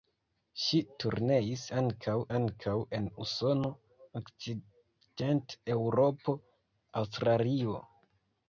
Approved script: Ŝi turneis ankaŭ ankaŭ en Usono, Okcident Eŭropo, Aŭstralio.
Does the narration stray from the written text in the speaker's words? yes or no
no